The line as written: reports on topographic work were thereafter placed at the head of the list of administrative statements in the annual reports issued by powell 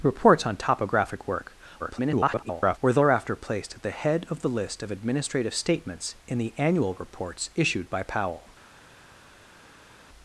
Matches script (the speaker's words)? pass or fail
fail